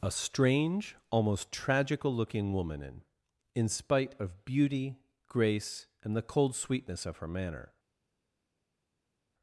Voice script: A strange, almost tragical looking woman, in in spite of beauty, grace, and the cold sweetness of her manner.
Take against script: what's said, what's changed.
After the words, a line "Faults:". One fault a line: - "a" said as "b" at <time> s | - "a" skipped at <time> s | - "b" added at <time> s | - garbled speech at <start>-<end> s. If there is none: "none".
A strange, almost tragical looking woman, in in spite of beauty, grace, and the cold sweetness of her manner.
Faults:
none